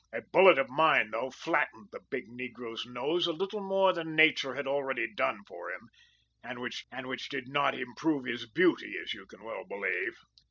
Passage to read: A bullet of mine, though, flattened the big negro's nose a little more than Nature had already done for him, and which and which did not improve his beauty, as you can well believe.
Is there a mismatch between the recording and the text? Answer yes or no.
no